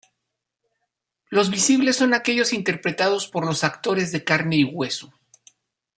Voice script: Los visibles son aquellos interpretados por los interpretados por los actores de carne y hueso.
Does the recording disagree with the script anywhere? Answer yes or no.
yes